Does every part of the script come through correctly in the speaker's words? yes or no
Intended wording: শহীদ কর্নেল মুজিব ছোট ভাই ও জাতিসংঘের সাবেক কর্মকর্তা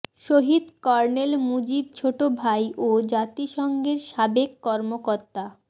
yes